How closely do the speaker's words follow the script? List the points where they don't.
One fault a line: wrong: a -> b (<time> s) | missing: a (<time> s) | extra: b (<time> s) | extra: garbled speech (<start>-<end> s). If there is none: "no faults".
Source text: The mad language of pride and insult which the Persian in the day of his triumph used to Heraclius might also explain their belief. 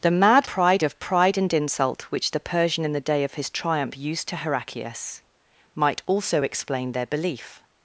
wrong: language -> pride (0.4 s)